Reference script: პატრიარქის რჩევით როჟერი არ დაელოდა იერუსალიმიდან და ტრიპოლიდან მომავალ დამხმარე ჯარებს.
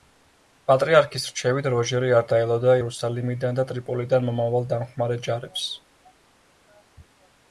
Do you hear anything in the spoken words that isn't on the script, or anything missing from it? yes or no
no